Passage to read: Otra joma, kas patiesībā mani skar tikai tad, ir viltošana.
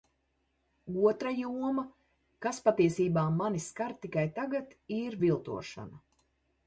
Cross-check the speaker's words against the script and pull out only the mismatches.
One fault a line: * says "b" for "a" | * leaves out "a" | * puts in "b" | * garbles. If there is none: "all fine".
* says "tagad" for "tad"